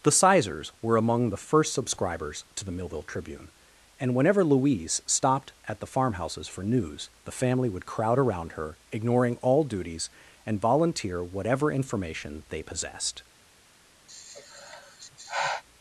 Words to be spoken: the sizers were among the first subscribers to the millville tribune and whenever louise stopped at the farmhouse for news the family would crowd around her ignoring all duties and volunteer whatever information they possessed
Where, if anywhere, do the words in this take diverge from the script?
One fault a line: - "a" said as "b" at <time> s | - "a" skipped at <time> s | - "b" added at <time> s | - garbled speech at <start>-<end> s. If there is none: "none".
- "farmhouse" said as "farmhouses" at 5.8 s